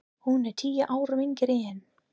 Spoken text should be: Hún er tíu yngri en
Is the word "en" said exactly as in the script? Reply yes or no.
yes